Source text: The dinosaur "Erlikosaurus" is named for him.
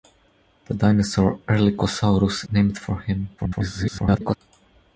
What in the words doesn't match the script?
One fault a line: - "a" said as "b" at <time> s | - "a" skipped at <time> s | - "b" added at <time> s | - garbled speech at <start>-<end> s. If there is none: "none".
- "is" skipped at 2.5 s
- garbled speech at 3.4-4.4 s